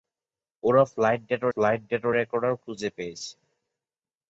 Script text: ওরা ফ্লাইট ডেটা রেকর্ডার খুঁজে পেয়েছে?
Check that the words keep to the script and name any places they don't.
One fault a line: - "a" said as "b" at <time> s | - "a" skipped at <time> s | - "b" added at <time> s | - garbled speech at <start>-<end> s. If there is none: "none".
- "ফ্লাইট ডেটা" added at 1.5 s